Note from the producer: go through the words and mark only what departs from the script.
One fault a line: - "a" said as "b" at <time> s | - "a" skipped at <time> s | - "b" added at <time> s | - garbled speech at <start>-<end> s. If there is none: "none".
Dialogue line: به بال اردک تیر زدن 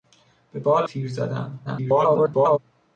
- "اردک" skipped at 0.8 s
- garbled speech at 1.6-2.6 s